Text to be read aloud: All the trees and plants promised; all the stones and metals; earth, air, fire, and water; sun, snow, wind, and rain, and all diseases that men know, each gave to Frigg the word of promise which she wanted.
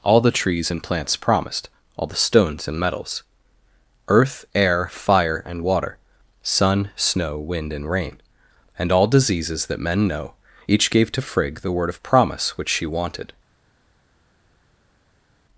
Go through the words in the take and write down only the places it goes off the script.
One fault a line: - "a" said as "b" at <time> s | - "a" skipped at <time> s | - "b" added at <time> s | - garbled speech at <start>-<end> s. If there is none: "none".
none